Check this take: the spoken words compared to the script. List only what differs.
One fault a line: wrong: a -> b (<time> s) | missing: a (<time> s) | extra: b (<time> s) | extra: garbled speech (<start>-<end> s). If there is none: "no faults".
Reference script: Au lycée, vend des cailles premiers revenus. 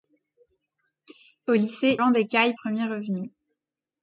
no faults